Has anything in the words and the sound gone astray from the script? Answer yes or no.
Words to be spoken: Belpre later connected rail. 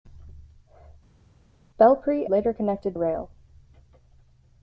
no